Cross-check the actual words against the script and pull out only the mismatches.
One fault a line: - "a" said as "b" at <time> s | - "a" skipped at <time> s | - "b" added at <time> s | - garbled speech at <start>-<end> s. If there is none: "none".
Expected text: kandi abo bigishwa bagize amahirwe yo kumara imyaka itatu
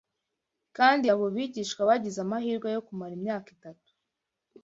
none